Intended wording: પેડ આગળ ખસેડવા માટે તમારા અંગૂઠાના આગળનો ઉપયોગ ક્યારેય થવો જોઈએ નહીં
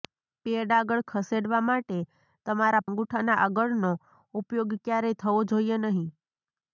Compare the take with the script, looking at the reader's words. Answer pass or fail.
pass